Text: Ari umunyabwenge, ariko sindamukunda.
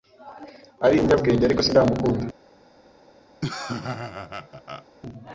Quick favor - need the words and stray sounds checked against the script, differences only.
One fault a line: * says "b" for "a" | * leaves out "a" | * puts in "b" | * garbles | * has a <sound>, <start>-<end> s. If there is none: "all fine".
* has a laugh, 3.4-4.9 s